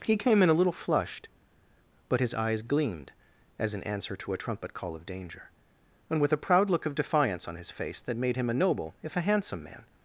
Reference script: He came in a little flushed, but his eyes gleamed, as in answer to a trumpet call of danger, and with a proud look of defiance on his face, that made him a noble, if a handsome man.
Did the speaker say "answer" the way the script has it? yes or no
yes